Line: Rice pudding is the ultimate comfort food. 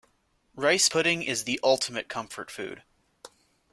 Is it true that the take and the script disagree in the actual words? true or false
false